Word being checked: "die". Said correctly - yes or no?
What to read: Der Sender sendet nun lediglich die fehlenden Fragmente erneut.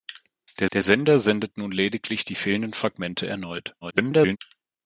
yes